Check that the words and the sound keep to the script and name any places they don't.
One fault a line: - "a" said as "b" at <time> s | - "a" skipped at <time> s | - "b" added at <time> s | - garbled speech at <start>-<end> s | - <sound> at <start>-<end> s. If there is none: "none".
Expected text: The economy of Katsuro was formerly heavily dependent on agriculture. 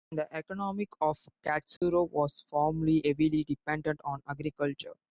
- dropout at 1.8-1.8 s